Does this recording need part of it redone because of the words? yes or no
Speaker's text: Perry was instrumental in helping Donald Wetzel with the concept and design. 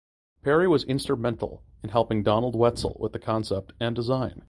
no